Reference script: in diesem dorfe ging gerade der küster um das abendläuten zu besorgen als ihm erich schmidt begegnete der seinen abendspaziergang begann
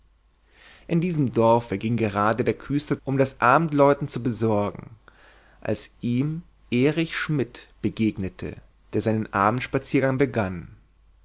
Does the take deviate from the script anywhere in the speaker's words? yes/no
no